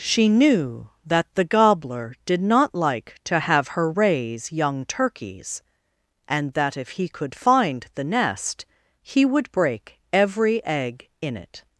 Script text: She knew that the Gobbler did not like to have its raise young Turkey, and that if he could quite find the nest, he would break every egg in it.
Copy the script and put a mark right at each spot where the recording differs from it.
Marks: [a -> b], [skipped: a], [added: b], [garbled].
She knew that the Gobbler did not like to have [its -> her] raise young [Turkey, -> Turkeys] and that if he could [skipped: quite] find the nest, he would break every egg in it.